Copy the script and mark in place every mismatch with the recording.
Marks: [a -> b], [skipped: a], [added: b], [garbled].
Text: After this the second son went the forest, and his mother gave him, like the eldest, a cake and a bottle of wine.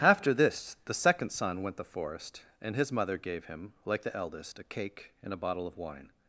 After this the second son went the forest, and his mother gave him, like the eldest, a cake and a bottle of wine.